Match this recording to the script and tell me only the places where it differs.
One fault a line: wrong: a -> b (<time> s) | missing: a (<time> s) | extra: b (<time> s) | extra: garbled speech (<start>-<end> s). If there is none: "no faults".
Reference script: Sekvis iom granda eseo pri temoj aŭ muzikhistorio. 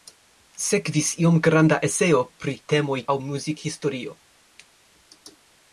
no faults